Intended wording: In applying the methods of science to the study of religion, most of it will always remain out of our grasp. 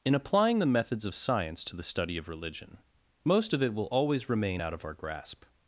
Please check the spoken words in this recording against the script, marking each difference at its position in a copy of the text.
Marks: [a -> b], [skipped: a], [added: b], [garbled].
In applying the methods of science to the study of religion, most of it will always remain out of our grasp.